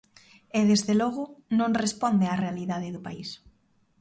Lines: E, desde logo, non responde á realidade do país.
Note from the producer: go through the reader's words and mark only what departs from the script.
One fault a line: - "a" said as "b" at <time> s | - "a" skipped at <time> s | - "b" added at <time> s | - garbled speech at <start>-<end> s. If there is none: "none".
none